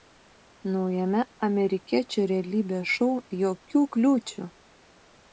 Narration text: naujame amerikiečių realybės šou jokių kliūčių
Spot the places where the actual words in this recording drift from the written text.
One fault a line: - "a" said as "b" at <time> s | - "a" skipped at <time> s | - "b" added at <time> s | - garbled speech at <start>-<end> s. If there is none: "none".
none